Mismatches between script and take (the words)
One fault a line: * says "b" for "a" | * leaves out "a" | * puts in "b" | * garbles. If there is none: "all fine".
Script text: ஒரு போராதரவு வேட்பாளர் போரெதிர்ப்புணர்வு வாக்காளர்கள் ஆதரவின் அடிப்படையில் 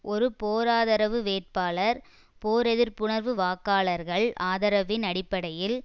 all fine